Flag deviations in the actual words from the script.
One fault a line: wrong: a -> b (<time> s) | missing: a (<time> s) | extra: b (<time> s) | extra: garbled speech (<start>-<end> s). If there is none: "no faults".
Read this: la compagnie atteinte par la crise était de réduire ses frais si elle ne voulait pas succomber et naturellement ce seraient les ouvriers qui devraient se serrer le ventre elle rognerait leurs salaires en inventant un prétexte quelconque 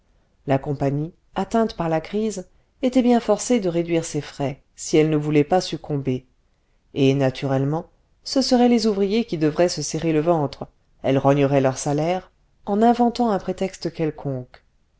extra: bien forcée (3.0 s)